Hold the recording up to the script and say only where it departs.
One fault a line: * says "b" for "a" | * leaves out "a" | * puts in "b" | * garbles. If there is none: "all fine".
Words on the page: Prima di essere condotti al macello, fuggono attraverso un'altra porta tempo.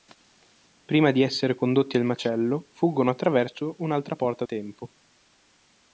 all fine